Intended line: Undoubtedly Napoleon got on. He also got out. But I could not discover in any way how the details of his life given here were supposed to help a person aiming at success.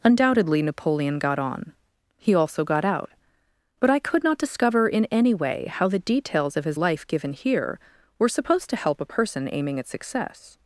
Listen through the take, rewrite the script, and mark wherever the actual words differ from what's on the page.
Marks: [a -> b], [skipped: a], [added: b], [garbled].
Undoubtedly Napoleon got on. He also got out. But I could not discover in any way how the details of his life given here were supposed to help a person aiming at success.